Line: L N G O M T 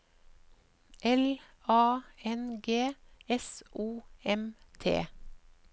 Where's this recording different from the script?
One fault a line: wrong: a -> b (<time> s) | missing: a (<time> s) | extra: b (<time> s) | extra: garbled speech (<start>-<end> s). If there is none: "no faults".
extra: A (1.7 s)
extra: S (3.3 s)